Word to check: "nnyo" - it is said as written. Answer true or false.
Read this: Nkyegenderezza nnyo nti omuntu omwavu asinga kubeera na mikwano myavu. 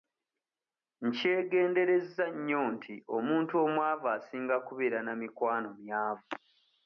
true